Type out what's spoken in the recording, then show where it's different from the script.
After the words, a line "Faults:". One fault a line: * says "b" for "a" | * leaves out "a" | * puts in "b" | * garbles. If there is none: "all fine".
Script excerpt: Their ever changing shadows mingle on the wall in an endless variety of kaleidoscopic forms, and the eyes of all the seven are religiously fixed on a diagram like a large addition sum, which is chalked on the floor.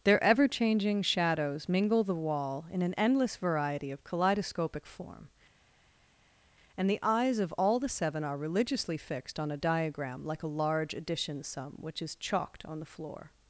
Their ever changing shadows mingle the wall in an endless variety of kaleidoscopic form, and the eyes of all the seven are religiously fixed on a diagram like a large addition sum, which is chalked on the floor.
Faults:
* leaves out "on"
* says "form" for "forms"